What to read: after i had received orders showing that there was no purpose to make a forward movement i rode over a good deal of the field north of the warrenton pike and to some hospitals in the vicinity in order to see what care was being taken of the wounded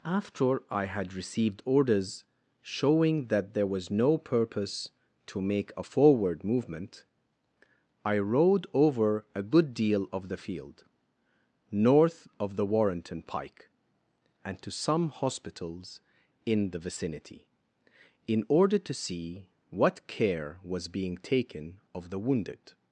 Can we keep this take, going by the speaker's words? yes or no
yes